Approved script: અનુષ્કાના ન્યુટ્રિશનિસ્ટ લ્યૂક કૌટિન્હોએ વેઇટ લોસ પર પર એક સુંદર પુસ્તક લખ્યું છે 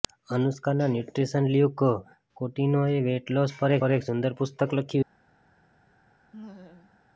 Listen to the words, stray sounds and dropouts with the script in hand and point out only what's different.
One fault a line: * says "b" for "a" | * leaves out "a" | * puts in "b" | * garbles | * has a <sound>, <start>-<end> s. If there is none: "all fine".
* has a laugh, 6.3-7.0 s